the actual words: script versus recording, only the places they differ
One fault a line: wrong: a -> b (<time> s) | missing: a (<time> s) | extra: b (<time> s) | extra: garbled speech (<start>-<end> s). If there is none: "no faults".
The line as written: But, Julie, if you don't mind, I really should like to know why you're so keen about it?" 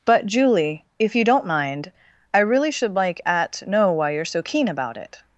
wrong: to -> at (3.2 s)